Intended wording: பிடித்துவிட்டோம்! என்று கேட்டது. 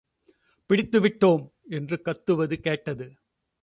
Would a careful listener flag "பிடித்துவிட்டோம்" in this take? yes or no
no